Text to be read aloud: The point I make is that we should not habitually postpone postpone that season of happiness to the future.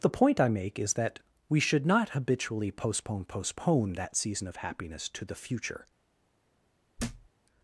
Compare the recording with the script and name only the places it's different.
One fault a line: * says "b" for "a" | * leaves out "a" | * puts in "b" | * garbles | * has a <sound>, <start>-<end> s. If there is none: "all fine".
* has a thud, 7.0-7.3 s